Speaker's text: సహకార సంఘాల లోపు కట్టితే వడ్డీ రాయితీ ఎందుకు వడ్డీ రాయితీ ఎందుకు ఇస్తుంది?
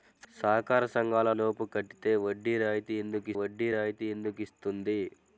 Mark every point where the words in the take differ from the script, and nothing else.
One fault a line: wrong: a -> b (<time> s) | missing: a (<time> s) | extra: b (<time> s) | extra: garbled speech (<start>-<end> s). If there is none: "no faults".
no faults